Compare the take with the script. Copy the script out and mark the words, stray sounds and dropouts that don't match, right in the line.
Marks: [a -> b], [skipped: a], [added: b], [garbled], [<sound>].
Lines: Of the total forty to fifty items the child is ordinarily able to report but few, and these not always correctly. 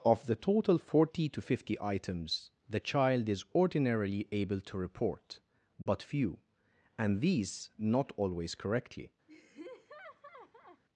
Of the total forty to fifty items the child is ordinarily able to report but [dropout] few, and these not always correctly. [laugh]